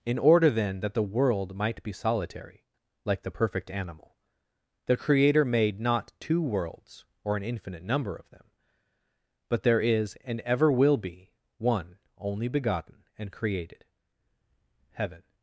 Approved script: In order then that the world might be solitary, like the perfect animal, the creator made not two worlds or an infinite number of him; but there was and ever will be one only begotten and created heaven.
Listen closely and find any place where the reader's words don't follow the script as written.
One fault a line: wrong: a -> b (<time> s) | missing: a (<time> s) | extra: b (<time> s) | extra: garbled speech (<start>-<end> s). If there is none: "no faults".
wrong: him -> them (8.3 s)
wrong: was -> is (9.8 s)